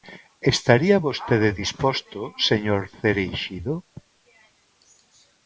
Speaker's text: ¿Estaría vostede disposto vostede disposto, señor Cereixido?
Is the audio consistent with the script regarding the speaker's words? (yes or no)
no